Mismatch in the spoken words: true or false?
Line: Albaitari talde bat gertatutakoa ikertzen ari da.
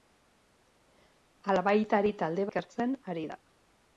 true